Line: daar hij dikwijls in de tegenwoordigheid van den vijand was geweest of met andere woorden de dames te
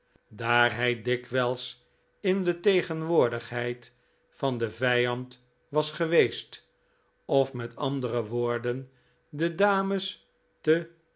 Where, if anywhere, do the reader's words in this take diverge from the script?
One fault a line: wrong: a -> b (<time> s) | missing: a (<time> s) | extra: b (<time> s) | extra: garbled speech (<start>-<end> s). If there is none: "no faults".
no faults